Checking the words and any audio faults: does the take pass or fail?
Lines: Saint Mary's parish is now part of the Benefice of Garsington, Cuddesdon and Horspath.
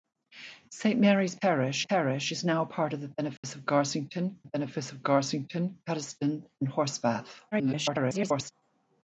fail